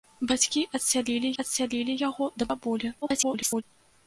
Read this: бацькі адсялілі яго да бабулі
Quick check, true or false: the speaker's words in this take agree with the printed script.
false